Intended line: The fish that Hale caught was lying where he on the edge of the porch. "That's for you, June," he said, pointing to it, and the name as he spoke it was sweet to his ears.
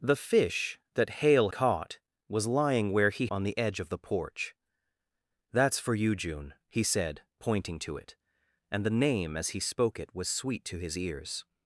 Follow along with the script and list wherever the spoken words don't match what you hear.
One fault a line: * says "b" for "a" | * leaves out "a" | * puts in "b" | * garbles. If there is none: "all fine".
all fine